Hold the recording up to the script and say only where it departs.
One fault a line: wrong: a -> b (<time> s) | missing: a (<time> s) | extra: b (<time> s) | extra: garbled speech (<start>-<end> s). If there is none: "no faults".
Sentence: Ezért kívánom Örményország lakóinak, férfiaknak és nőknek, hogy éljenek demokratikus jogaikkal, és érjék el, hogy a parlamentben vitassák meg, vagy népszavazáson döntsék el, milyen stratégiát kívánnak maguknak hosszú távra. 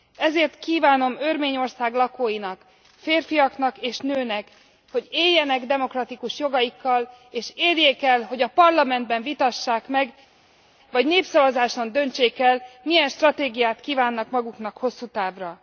no faults